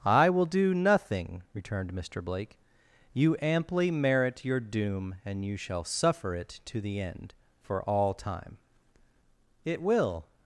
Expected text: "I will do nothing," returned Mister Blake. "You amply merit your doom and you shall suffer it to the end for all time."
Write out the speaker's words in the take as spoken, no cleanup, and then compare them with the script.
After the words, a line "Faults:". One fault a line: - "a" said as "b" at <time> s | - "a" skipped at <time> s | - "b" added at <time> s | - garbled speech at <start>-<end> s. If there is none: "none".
"I will do nothing," returned Mister Blake. "You amply merit your doom and you shall suffer it to the end for all time." "It will
Faults:
- "It will" added at 9.6 s